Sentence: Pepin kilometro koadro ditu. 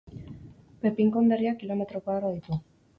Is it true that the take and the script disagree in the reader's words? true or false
true